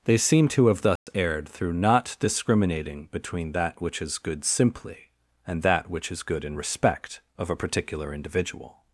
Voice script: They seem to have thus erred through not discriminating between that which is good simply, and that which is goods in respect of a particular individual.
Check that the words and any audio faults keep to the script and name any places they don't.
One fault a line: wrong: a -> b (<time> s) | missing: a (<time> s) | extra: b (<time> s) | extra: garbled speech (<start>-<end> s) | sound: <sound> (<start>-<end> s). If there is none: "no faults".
sound: dropout (1.0-1.1 s)
wrong: goods -> good (6.2 s)